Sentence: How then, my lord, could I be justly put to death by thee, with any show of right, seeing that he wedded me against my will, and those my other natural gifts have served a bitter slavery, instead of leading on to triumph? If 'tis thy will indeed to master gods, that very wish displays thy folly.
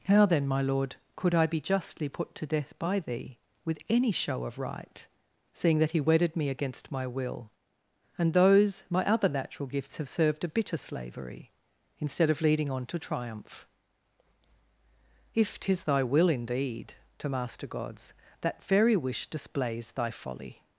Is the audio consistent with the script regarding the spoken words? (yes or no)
yes